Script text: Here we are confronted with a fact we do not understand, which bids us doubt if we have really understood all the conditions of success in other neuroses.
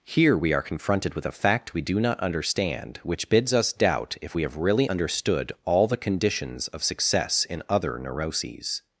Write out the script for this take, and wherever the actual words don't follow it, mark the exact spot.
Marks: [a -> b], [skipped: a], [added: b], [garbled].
Here we are confronted with a fact we do not understand, which bids us doubt if we have really understood all the conditions of success in other neuroses.